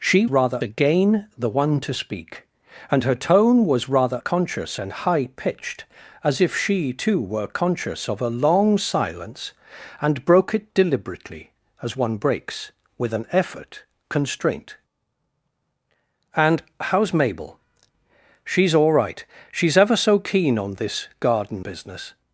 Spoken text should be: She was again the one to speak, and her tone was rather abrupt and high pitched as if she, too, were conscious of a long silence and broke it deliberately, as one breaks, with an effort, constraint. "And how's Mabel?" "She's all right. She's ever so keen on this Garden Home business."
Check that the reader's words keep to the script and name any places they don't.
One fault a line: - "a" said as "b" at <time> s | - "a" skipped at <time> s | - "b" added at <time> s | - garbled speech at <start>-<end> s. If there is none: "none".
- "was" said as "rather" at 0.3 s
- "abrupt" said as "conscious" at 4.2 s
- "Home" skipped at 21.6 s